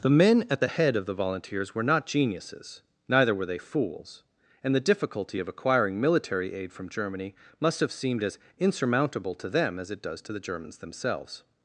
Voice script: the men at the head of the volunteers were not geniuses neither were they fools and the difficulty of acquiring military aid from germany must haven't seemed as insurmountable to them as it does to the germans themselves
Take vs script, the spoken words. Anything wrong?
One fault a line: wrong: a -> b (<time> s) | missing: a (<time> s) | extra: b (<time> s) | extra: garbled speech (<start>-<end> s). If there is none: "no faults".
wrong: haven't -> have (7.8 s)